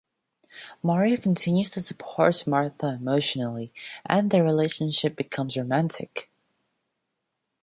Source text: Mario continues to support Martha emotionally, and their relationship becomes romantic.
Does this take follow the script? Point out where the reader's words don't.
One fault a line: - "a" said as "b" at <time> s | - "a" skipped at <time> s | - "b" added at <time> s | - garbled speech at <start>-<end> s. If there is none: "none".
none